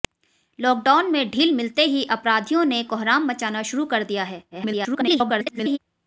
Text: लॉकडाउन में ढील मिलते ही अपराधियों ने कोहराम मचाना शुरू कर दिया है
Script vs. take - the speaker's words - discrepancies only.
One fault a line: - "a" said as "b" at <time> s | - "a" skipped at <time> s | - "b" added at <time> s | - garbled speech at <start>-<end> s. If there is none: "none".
- garbled speech at 4.5-5.8 s